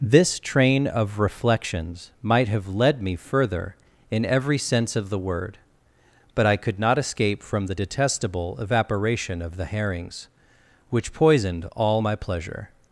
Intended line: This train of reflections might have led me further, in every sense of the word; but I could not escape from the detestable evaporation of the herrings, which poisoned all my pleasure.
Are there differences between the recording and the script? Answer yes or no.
no